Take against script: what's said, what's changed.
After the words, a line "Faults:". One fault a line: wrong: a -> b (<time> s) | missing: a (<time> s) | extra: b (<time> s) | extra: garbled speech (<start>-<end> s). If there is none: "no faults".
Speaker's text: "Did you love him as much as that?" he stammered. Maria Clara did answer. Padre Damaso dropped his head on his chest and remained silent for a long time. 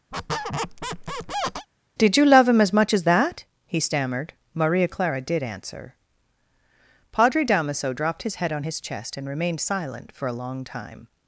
"Did you love him as much as that?" he stammered. Maria Clara did answer. Padre Damaso dropped his head on his chest and remained silent for a long time.
Faults:
no faults